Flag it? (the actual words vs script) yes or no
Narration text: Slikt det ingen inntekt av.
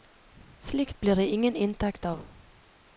yes